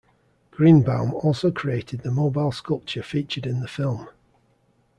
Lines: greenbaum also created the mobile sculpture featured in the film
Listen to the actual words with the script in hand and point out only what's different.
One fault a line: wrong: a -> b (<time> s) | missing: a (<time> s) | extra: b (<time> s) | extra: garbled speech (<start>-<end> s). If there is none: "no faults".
no faults